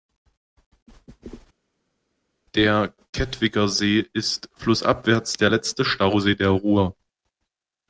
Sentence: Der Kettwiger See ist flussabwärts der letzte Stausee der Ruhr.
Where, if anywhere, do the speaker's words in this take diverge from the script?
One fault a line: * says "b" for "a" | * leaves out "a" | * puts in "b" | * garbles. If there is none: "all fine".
all fine